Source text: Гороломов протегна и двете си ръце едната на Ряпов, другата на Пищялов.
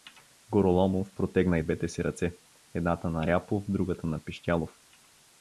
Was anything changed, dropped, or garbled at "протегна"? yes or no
no